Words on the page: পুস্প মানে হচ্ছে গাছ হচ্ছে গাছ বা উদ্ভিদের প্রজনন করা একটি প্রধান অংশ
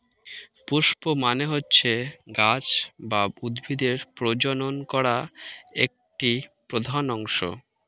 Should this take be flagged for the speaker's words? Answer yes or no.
yes